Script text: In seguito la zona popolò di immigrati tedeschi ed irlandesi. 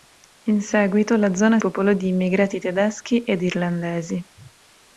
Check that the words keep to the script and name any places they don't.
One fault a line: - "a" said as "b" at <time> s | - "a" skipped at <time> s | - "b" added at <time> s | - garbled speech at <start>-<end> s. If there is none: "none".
none